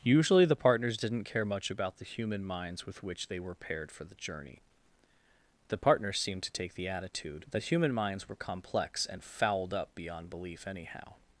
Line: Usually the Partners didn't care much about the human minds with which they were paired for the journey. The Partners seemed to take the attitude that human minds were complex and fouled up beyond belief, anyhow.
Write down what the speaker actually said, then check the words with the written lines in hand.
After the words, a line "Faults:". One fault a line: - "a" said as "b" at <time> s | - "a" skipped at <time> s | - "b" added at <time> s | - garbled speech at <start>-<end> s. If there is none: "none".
Usually the Partners didn't care much about the human minds with which they were paired for the journey. The Partners seemed to take the attitude that human minds were complex and fouled up beyond belief, anyhow.
Faults:
none